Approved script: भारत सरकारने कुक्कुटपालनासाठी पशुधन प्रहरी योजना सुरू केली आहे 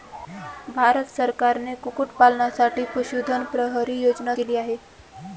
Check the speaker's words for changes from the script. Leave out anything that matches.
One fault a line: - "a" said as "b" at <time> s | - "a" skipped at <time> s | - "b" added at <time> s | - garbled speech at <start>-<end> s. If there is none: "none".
- "सुरू" skipped at 4.3 s